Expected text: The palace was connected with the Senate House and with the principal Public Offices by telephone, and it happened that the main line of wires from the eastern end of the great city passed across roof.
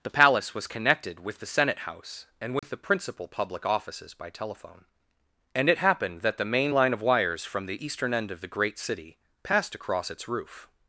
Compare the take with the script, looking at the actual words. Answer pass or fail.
fail